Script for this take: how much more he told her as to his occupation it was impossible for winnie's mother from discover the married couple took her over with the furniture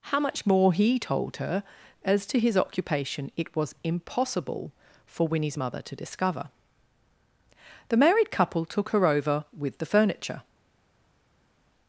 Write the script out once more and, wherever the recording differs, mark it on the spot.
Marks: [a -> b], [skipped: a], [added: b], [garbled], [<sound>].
how much more he told her as to his occupation it was impossible for winnie's mother [from -> to] discover the married couple took her over with the furniture